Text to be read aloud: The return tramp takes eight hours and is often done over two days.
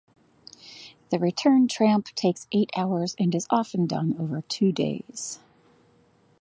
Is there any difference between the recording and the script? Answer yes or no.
no